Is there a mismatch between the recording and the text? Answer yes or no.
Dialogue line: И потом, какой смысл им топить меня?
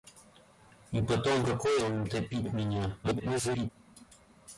yes